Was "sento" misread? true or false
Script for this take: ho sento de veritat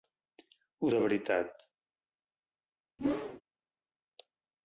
true